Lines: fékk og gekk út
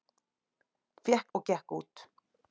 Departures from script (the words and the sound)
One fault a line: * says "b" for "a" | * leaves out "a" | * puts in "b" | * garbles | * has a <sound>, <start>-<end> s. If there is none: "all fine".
all fine